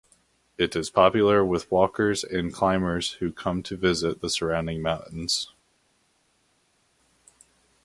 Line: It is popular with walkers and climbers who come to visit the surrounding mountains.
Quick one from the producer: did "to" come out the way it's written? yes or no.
yes